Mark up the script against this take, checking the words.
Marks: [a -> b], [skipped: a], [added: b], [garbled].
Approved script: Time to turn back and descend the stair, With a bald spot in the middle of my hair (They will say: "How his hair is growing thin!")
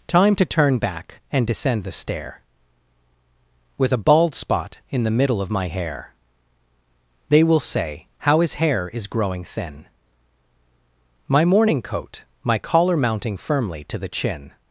Time to turn back and descend the stair, With a bald spot in the middle of my hair (They will say: "How his hair is growing thin!") [added: My morning coat my collar mounting firmly to the chin]